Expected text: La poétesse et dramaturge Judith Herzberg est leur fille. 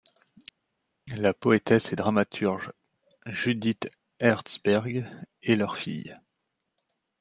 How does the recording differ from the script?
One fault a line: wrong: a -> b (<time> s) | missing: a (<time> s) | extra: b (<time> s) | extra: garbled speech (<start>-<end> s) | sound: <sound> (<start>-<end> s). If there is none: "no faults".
no faults